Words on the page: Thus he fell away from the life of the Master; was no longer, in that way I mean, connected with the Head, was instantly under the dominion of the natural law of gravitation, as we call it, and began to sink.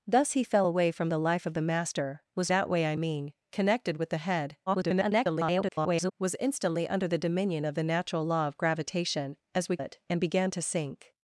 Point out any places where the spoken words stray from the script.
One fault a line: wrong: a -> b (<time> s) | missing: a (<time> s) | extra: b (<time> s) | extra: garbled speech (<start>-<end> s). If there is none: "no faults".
missing: no longer in (2.5 s)
extra: garbled speech (4.7-6.1 s)
missing: call (9.8 s)